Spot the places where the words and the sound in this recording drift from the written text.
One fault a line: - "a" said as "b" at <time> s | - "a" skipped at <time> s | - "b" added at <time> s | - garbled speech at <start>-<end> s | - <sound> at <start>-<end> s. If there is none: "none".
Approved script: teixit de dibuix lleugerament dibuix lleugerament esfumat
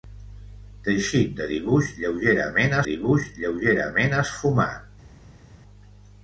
none